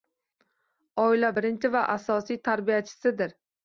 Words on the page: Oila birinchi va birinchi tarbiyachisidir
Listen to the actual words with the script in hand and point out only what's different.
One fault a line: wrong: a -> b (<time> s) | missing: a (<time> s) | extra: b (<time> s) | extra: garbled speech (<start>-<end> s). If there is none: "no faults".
wrong: birinchi -> asosiy (2.0 s)